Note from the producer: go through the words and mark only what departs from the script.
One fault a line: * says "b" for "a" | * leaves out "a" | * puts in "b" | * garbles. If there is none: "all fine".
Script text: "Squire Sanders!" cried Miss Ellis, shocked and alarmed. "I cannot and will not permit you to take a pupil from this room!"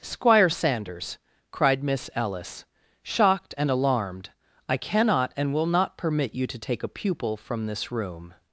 all fine